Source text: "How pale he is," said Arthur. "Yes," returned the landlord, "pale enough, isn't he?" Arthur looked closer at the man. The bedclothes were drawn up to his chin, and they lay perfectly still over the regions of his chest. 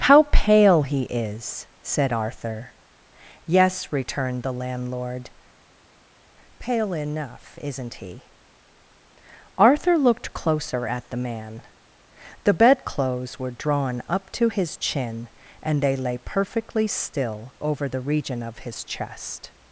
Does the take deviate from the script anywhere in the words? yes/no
yes